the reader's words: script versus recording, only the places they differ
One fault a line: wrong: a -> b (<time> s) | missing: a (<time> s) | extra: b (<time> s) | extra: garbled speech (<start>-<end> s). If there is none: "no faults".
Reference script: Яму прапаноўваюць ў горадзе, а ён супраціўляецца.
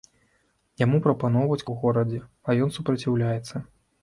no faults